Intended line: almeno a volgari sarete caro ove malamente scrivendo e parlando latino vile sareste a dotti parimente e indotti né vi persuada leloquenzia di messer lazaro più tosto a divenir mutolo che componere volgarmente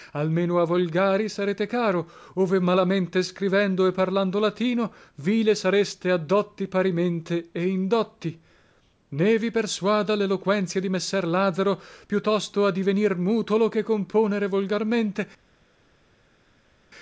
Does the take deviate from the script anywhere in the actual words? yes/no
no